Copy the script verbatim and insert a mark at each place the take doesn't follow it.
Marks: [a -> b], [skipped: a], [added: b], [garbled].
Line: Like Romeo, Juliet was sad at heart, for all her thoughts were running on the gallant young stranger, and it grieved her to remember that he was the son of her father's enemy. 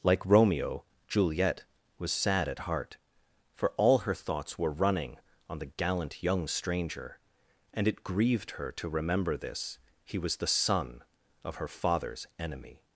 Like Romeo, Juliet was sad at heart, for all her thoughts were running on the gallant young stranger, and it grieved her to remember [that -> this] he was the son of her father's enemy.